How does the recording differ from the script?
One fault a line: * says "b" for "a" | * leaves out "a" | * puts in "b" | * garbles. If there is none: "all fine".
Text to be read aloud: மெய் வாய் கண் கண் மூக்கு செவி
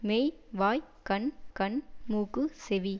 all fine